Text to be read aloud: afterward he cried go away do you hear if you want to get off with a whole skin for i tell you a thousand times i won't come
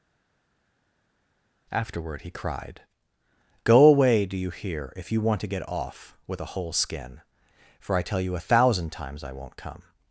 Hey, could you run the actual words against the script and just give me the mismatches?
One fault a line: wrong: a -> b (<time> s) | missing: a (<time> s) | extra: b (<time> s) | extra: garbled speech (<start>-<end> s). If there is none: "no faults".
no faults